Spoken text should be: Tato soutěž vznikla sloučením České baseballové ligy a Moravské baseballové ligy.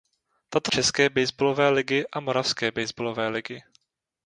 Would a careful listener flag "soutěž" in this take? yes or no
yes